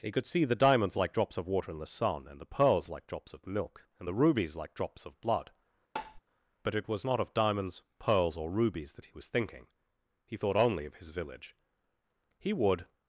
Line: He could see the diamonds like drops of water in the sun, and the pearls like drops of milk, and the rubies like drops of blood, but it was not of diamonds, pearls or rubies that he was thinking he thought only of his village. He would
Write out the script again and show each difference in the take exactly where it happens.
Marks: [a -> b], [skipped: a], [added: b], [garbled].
He could see the diamonds like drops of water in the sun, and the pearls like drops of milk, and the rubies like drops of blood, but it was not of diamonds, pearls or rubies that he was thinking he thought only of his village. He would